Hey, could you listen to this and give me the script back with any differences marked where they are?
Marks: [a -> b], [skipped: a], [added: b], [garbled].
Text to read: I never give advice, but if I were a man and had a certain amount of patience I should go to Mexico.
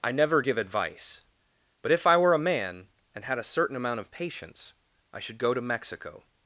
I never give advice, but if I were a man and had a certain amount of patience I should go to Mexico.